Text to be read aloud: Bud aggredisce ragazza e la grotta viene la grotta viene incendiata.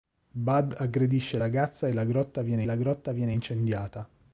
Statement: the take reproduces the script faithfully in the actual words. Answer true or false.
true